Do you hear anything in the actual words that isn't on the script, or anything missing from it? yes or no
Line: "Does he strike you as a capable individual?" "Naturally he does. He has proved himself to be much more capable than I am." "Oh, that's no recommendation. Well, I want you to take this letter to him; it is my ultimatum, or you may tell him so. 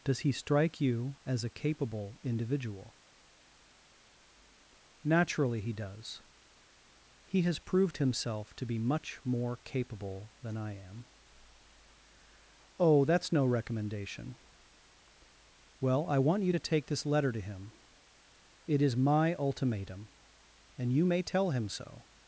yes